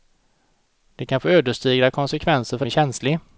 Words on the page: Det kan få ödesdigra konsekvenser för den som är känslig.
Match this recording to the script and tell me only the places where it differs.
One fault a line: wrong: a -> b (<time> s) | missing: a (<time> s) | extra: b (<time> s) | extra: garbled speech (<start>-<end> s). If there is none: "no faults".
missing: den som (2.6 s)